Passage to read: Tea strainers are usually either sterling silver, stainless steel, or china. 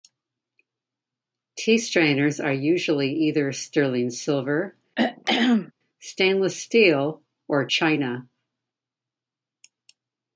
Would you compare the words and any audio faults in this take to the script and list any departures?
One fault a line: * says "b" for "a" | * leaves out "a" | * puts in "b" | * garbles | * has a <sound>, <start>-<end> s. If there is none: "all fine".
* has a throat clearing, 5.0-5.7 s